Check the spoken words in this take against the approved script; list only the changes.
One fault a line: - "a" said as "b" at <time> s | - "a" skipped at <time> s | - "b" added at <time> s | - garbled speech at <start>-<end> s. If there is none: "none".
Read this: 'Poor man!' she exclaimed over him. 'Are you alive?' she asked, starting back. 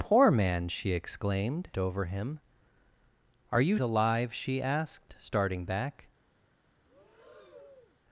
none